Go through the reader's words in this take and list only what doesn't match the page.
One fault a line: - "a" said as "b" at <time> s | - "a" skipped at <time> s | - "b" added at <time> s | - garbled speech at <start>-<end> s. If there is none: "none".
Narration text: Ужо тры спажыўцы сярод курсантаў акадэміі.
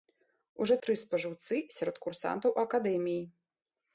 none